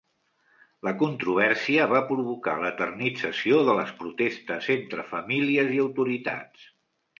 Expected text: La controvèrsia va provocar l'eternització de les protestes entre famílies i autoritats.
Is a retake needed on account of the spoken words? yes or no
no